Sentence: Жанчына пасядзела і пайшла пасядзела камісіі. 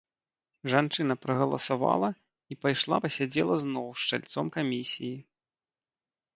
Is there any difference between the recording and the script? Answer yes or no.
yes